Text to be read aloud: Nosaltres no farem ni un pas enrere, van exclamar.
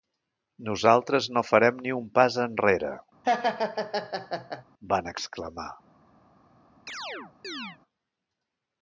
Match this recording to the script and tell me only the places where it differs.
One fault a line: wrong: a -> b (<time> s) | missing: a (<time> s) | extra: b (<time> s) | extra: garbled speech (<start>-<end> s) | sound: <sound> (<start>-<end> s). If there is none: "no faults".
sound: laugh (3.2-4.6 s)
sound: chirp (6.9-7.8 s)